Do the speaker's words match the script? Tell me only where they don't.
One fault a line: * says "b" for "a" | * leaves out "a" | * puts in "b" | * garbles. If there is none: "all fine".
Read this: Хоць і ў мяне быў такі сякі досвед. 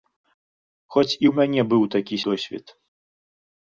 * leaves out "сякі"